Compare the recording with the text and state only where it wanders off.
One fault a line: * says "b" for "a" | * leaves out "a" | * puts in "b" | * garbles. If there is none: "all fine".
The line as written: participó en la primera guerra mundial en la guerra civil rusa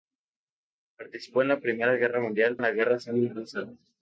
all fine